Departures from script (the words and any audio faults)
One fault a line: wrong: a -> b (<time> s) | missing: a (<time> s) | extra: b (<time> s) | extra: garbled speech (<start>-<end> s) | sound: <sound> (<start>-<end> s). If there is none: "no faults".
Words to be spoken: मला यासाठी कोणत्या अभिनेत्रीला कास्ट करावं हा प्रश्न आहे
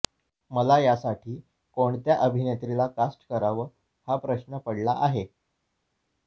extra: पडला (4.6 s)